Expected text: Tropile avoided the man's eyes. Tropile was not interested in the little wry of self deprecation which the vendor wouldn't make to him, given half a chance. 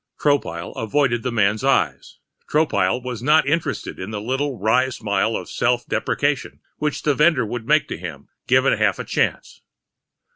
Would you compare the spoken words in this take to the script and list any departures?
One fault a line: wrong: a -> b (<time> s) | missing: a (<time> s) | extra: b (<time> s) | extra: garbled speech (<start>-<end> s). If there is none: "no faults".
extra: smile (4.9 s)
wrong: wouldn't -> would (7.5 s)